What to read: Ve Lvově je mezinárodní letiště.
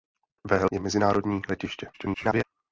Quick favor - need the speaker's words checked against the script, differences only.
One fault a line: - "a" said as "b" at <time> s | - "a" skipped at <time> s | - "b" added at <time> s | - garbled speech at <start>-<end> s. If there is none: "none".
- "Lvově" skipped at 0.7 s
- garbled speech at 1.9-2.4 s